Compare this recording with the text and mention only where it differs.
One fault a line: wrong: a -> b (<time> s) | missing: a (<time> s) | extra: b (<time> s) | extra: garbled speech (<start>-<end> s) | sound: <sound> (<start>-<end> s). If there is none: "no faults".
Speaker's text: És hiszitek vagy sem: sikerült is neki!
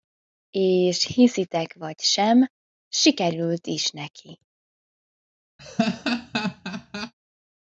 sound: laugh (5.6-7.1 s)